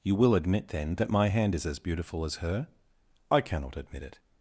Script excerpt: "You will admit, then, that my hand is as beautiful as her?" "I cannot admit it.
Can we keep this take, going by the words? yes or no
yes